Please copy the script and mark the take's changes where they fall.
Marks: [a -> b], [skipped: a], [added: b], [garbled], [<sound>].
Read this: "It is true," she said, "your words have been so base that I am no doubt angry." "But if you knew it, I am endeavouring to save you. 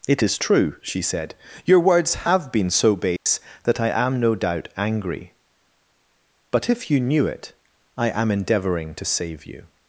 "It is true," she said, "your words have been so base [dropout] that I am no doubt angry." "But if you knew it, I am endeavouring to save you.